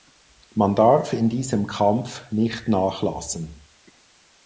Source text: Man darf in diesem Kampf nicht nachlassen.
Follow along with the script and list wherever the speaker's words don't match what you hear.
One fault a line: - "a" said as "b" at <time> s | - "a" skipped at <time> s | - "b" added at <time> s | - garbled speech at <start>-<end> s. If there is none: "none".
none